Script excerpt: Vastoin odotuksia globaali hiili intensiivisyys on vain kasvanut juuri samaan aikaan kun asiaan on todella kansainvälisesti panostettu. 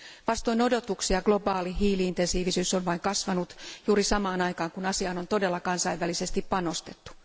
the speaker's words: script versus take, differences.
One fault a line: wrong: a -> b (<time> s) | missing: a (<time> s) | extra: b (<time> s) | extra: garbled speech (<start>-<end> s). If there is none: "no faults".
no faults